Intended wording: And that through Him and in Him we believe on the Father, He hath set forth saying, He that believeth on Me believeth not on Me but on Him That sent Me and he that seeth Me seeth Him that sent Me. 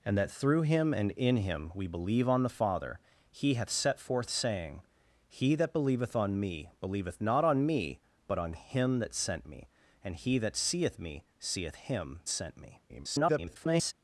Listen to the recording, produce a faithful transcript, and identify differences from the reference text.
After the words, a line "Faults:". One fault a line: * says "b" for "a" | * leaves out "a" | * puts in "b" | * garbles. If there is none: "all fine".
And that through Him and in Him we believe on the Father, He hath set forth saying, He that believeth on Me believeth not on Me but on Him That sent Me and he that seeth Me seeth Him sent Me. [garbled]
Faults:
* leaves out "that"
* garbles